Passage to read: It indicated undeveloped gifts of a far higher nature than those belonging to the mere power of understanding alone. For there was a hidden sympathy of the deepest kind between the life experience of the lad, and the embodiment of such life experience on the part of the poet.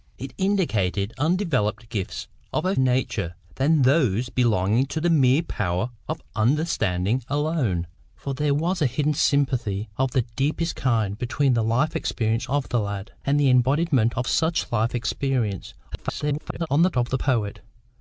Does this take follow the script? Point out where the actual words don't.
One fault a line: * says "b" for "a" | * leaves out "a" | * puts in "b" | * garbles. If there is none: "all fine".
* leaves out "far higher"
* garbles
* leaves out "part"